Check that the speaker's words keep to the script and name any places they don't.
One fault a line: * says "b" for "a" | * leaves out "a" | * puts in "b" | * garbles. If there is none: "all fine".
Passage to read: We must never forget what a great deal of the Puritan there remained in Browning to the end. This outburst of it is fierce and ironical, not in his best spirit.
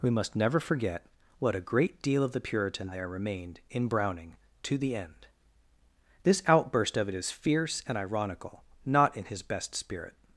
all fine